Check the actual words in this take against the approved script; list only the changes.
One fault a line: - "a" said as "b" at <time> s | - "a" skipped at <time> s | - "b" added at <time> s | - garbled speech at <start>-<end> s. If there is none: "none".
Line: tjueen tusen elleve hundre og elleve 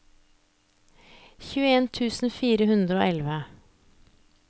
- "elleve" said as "fire" at 2.4 s